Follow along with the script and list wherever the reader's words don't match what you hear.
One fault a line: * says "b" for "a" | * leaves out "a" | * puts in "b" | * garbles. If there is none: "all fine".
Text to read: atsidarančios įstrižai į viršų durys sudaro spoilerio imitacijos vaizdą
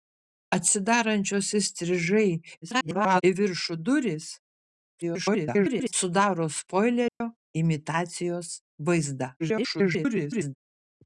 * garbles
* garbles
* garbles